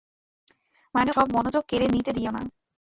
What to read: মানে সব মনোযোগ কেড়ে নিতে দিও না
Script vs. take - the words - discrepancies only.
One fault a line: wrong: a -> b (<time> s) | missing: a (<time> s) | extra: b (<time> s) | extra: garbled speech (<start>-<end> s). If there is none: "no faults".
no faults